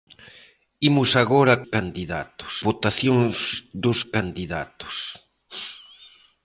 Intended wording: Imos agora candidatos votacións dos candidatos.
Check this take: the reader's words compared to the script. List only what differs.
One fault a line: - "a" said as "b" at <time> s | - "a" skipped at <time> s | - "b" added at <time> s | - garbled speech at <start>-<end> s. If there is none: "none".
none